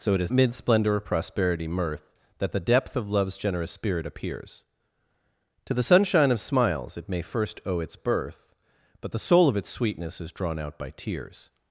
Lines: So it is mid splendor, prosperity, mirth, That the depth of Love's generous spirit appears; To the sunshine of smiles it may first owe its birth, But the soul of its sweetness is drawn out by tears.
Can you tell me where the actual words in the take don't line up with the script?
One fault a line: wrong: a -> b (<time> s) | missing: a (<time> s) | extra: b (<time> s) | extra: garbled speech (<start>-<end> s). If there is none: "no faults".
no faults